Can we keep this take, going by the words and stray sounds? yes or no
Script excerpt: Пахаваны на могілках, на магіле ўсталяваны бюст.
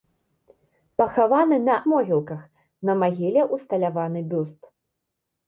yes